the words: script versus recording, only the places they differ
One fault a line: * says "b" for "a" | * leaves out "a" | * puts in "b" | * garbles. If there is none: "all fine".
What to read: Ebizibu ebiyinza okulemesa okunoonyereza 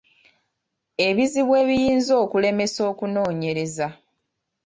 all fine